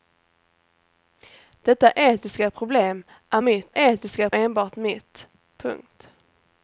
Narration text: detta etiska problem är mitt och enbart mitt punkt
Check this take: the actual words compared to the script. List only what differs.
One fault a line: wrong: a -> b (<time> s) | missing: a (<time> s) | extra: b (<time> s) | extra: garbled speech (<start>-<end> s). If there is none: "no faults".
wrong: och -> etiska (3.7 s)